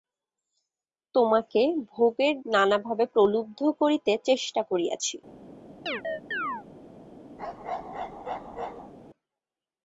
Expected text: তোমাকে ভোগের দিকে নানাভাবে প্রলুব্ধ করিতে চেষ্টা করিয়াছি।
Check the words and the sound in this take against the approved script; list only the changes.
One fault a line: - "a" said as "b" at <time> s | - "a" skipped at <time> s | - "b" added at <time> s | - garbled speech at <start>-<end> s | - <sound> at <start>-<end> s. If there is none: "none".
- "দিকে" skipped at 2.4 s
- chirp at 5.9-6.7 s
- bark at 7.4-8.9 s